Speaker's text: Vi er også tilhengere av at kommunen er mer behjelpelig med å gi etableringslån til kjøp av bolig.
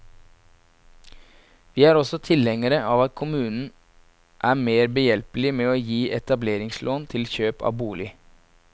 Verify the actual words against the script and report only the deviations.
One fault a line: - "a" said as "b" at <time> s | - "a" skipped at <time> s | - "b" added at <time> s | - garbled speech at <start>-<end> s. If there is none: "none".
none